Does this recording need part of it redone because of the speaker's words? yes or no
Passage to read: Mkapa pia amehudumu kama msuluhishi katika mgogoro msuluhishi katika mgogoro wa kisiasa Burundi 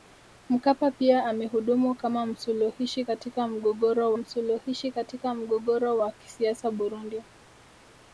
no